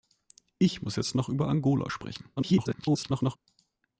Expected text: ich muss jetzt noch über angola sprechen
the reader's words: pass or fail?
fail